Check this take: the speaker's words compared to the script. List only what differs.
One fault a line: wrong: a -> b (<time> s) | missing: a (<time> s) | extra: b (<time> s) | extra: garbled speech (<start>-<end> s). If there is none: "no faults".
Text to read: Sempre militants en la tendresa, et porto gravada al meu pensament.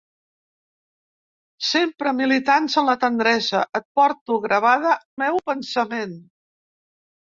missing: al (5.0 s)